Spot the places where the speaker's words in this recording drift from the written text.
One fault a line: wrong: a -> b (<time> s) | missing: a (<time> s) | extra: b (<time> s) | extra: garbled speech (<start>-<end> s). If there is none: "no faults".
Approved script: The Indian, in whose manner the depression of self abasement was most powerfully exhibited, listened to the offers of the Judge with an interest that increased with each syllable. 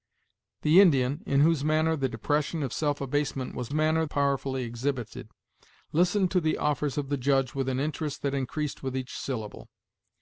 wrong: most -> manner (3.7 s)